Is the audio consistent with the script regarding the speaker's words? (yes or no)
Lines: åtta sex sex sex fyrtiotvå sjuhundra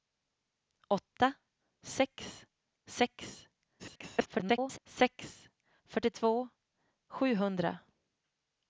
no